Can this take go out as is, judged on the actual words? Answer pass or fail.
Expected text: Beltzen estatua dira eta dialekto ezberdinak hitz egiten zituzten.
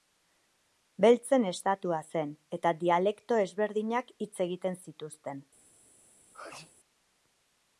fail